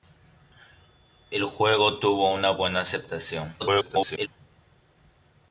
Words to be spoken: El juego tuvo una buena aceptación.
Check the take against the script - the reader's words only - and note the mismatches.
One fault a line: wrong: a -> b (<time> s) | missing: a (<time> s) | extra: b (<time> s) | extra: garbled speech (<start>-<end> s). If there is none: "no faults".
extra: garbled speech (3.6-4.3 s)